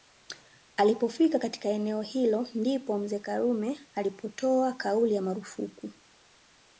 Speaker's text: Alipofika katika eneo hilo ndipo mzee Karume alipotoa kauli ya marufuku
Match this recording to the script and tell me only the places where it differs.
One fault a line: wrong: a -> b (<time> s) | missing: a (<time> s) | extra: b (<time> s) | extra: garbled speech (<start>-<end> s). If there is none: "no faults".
no faults